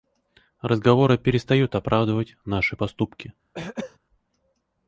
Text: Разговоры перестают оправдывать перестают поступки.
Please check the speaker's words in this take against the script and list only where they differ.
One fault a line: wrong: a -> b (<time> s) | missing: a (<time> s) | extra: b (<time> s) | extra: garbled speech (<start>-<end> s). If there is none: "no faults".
wrong: перестают -> наши (2.4 s)